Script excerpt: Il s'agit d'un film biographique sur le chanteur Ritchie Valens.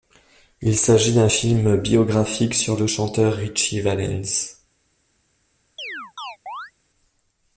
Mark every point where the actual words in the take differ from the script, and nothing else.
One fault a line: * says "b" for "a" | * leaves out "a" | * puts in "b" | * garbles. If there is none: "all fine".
all fine